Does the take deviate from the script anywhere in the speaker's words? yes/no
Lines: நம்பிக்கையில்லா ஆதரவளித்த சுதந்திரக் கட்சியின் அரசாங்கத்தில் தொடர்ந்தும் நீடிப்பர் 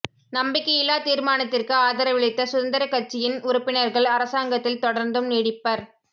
yes